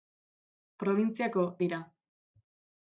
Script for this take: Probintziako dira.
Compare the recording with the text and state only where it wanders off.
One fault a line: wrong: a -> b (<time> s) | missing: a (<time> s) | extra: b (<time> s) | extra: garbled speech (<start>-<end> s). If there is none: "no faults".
no faults